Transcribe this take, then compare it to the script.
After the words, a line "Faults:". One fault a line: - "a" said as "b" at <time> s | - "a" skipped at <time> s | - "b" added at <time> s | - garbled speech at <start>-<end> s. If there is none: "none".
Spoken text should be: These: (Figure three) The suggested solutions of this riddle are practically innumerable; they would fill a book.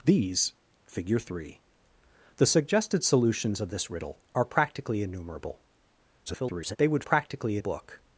These: (Figure three) The suggested solutions of this riddle are practically innumerable; [garbled] they would practically a book.
Faults:
- garbled speech at 6.3-6.8 s
- "fill" said as "practically" at 7.0 s